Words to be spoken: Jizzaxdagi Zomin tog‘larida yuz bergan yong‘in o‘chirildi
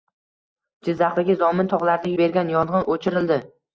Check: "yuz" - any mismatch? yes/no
yes